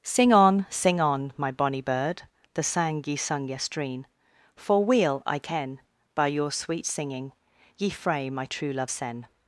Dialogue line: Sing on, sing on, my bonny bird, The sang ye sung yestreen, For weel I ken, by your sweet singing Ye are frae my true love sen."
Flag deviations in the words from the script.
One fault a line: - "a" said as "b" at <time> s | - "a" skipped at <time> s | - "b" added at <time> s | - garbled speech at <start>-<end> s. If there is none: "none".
- "are" skipped at 7.9 s